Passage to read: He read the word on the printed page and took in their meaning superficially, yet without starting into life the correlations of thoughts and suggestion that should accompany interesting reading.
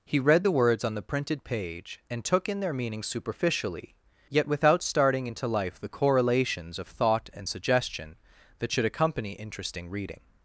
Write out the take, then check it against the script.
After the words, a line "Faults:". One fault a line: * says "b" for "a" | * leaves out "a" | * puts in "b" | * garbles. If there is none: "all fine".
He read the words on the printed page and took in their meaning superficially, yet without starting into life the correlations of thought and suggestion that should accompany interesting reading.
Faults:
* says "words" for "word"
* says "thought" for "thoughts"